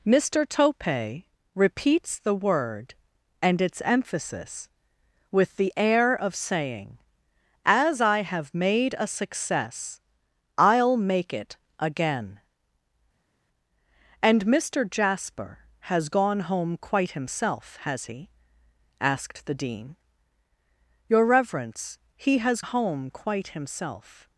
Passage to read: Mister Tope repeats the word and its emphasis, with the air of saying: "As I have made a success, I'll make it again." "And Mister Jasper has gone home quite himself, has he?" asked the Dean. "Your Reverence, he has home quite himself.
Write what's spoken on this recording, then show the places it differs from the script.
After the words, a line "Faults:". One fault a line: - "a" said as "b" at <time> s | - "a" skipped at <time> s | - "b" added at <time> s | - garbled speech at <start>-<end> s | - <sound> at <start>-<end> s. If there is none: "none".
Mister Tope repeats the word and its emphasis, with the air of saying: "As I have made a success, I'll make it again." "And Mister Jasper has gone home quite himself, has he?" asked the Dean. "Your Reverence, he has home quite himself.
Faults:
none